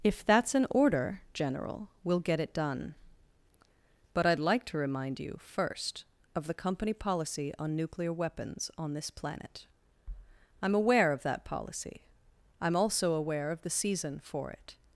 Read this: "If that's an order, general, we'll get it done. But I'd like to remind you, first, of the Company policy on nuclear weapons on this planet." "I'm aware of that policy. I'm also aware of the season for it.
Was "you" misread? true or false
false